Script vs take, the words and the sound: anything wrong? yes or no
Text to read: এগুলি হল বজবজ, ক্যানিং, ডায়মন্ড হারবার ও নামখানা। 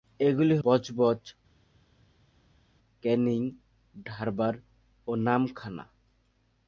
yes